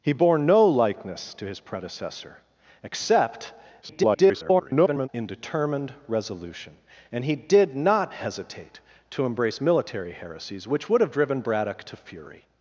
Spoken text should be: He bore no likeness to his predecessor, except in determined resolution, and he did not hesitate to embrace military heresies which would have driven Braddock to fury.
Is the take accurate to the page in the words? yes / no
no